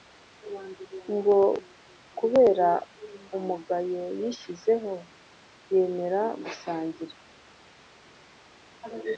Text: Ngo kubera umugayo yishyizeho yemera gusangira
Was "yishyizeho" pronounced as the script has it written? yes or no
yes